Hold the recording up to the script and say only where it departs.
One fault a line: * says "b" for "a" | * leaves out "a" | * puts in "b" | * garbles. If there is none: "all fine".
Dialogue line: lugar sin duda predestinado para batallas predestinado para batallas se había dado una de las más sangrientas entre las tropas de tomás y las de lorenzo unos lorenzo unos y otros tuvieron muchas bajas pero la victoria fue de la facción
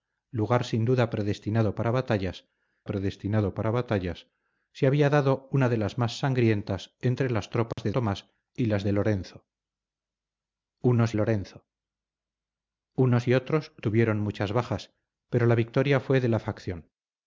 all fine